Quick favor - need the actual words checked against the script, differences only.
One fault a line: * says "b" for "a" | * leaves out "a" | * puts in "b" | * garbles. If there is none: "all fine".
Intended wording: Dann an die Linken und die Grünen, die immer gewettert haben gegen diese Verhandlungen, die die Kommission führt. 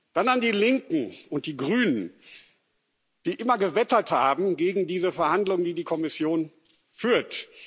all fine